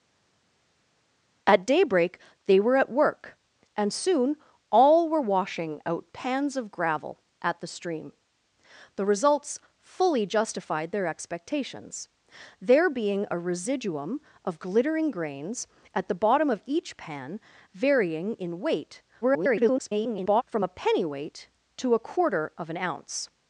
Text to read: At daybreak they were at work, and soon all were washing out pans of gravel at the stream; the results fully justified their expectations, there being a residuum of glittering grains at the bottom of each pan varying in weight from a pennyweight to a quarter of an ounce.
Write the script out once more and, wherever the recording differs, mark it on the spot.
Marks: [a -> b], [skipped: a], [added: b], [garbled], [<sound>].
At daybreak they were at work, and soon all were washing out pans of gravel at the stream; the results fully justified their expectations, there being a residuum of glittering grains at the bottom of each pan varying in weight [garbled] from a pennyweight to a quarter of an ounce.